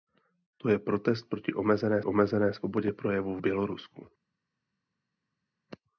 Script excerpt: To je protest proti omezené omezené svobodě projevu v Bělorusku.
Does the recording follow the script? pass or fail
pass